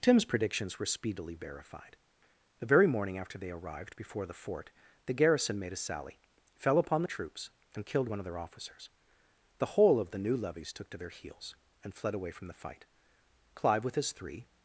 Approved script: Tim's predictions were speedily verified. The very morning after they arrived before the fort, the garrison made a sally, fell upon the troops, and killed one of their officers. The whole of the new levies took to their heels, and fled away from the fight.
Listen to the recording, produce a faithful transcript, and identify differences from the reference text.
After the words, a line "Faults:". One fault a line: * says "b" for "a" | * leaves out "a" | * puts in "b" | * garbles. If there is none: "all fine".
Tim's predictions were speedily verified. The very morning after they arrived before the fort, the garrison made a sally, fell upon the troops, and killed one of their officers. The whole of the new levies took to their heels, and fled away from the fight. Clive, with his three
Faults:
* puts in "Clive with his three"